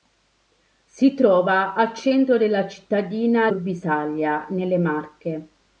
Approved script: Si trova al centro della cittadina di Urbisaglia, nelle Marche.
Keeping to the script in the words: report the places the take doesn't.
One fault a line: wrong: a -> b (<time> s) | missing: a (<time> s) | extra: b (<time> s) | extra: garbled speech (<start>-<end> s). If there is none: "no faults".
missing: di (3.5 s)